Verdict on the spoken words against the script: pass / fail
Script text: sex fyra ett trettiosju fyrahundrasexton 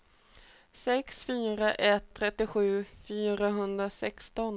pass